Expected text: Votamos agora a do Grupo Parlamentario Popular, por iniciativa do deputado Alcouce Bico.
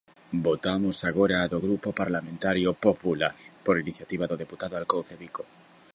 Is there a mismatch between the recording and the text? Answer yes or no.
no